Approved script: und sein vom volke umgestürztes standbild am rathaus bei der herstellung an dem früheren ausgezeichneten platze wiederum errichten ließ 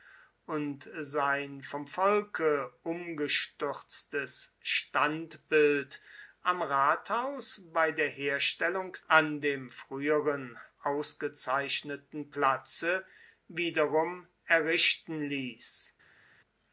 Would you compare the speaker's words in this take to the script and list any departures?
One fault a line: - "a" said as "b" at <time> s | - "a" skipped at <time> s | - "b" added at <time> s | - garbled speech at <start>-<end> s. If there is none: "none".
none